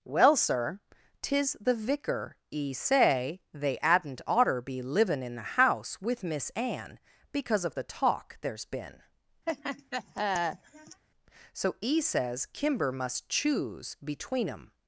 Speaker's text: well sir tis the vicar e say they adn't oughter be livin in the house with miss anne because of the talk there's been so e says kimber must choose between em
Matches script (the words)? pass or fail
pass